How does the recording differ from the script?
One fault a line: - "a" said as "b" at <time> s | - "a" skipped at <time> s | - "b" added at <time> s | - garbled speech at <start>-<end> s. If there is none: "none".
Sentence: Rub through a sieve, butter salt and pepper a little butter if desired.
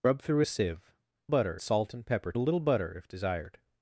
none